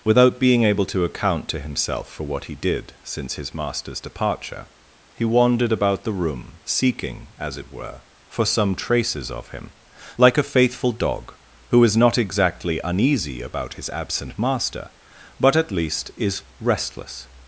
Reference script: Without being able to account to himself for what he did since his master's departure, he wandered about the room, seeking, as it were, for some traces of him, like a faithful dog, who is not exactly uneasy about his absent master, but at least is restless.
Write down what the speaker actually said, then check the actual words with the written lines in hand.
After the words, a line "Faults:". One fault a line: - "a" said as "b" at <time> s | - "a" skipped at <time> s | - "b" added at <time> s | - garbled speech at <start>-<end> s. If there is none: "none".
Without being able to account to himself for what he did since his master's departure, he wandered about the room, seeking, as it were, for some traces of him, like a faithful dog, who is not exactly uneasy about his absent master, but at least is restless.
Faults:
none